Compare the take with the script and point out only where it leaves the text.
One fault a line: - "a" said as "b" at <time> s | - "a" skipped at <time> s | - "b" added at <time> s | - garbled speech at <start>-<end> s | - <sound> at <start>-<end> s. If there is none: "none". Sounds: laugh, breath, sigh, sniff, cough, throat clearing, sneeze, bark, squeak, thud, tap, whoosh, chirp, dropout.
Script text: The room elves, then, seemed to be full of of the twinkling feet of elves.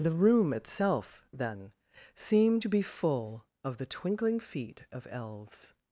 - "elves" said as "itself" at 0.5 s
- "of" skipped at 3.8 s